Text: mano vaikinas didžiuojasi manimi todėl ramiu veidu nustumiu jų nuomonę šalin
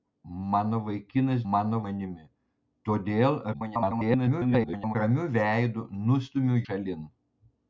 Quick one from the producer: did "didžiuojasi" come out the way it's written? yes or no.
no